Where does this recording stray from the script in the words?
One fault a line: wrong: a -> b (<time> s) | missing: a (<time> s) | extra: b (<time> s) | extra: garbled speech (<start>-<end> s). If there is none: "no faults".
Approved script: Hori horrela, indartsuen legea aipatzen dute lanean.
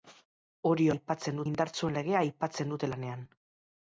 wrong: horrela -> aipatzen (0.9 s)